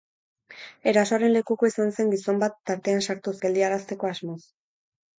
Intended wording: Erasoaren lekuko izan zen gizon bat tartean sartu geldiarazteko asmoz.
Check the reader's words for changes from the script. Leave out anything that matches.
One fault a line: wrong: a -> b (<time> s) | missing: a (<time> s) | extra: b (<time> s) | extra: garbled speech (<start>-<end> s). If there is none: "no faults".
no faults